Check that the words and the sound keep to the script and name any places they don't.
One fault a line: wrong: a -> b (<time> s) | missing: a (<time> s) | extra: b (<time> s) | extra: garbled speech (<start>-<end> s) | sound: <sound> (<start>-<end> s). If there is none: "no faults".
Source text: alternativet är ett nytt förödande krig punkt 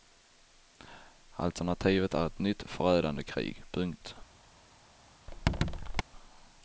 sound: squeak (5.3-6.0 s)